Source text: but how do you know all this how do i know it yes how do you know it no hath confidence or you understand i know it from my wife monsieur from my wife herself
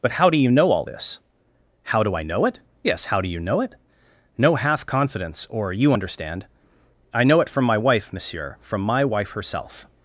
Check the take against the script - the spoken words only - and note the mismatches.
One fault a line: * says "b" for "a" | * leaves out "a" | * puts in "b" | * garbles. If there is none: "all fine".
all fine